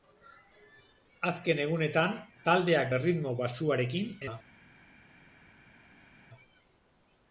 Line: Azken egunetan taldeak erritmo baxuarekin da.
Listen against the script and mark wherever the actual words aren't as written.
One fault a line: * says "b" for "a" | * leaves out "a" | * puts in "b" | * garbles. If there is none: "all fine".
all fine